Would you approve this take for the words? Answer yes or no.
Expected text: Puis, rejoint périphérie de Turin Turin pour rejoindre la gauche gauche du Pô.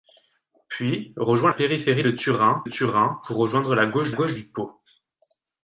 yes